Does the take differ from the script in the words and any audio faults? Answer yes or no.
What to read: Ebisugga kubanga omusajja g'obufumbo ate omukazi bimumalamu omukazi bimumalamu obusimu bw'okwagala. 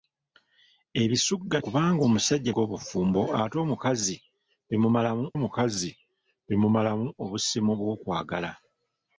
no